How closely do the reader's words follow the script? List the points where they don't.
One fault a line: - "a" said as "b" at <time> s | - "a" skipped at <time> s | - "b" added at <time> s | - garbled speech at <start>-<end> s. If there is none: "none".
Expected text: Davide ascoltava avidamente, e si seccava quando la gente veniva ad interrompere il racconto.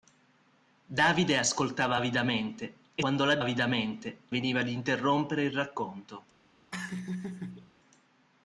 - "si seccava" skipped at 3.0 s
- "gente" said as "avidamente" at 3.4 s